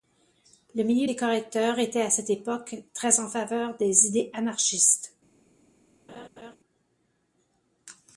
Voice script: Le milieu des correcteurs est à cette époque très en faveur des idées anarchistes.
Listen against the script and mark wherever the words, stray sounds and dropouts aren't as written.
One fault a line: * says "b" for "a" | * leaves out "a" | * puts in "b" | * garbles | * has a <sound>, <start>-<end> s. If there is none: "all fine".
* says "était" for "est"
* has a laugh, 6.1-6.6 s